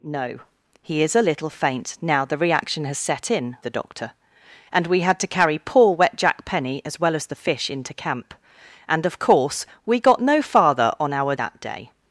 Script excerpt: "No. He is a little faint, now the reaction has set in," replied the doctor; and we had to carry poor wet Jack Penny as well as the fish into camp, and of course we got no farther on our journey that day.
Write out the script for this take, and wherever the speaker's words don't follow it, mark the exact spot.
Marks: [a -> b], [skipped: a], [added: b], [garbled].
"No. He is a little faint, now the reaction has set in," [skipped: replied] the doctor; and we had to carry poor wet Jack Penny as well as the fish into camp, and of course we got no farther on our [skipped: journey] that day.